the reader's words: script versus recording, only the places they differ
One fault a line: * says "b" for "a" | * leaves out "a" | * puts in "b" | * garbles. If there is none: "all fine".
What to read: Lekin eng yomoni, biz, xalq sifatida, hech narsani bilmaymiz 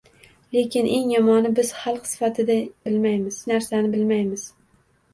* says "bilmaymiz" for "hech"